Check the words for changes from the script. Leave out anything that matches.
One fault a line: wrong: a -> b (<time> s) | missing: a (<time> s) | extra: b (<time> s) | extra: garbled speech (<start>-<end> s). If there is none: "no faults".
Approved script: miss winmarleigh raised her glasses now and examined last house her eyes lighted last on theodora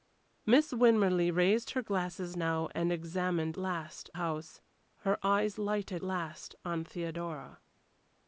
no faults